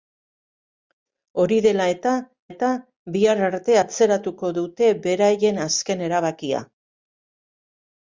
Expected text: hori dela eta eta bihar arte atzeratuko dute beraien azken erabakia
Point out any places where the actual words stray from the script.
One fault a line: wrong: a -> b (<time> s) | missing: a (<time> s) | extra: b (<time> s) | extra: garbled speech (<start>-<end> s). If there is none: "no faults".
no faults